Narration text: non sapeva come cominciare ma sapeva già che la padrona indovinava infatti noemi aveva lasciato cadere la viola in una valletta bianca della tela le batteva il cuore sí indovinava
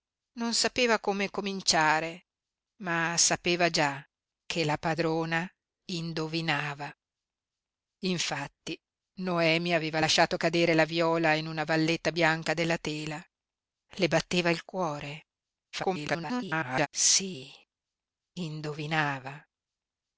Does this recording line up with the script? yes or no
no